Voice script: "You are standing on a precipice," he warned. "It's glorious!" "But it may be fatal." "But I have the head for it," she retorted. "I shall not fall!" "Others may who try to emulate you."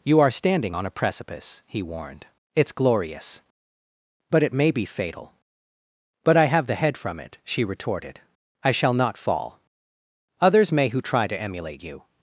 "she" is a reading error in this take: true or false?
false